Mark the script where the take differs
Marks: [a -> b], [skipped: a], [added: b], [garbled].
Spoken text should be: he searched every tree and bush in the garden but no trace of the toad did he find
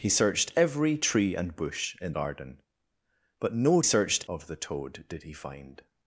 he searched every tree and bush in [skipped: the] garden but no [trace -> searched] of the toad did he find